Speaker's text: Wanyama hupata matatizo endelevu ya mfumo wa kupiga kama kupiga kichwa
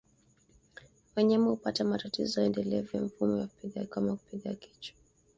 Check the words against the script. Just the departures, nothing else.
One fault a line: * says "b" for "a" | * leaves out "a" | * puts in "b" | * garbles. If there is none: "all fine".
all fine